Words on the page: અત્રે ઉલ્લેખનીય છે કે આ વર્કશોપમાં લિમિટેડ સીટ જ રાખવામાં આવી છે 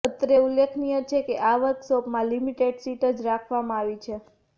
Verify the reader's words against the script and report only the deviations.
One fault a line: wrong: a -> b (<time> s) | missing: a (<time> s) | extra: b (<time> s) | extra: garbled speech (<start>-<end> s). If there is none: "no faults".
no faults